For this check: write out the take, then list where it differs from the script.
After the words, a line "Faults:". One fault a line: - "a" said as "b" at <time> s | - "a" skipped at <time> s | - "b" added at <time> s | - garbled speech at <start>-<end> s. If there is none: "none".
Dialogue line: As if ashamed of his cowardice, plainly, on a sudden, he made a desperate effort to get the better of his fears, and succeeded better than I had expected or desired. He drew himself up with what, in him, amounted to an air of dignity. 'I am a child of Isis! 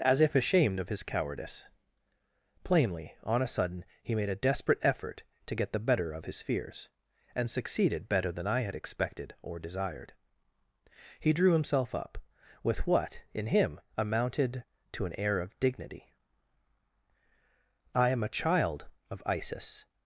As if ashamed of his cowardice, plainly, on a sudden, he made a desperate effort to get the better of his fears, and succeeded better than I had expected or desired. He drew himself up with what, in him, amounted to an air of dignity. 'I am a child of Isis!
Faults:
none